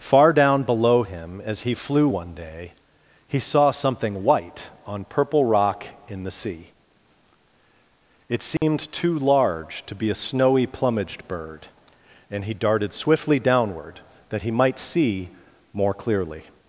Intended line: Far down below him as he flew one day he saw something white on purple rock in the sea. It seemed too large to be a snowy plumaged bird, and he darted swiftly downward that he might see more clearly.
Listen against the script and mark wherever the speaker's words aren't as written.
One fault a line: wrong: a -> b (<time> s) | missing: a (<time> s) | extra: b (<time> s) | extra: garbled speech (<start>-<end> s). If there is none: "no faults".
no faults